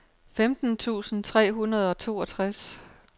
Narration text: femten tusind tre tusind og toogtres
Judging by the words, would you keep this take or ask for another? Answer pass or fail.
fail